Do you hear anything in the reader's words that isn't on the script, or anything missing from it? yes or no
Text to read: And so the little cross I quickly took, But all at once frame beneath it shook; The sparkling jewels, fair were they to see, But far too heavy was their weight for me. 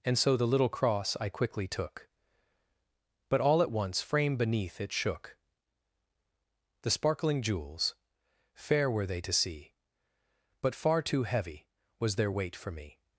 no